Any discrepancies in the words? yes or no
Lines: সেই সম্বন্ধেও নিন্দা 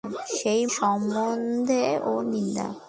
no